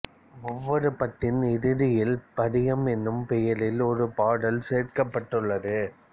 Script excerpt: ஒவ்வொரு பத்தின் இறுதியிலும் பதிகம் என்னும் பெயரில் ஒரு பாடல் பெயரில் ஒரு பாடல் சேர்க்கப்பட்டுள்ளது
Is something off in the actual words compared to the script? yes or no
yes